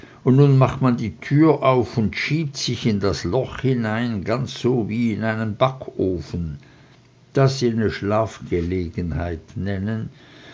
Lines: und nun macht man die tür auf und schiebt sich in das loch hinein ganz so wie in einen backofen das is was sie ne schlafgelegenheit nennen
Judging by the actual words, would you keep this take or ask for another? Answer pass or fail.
fail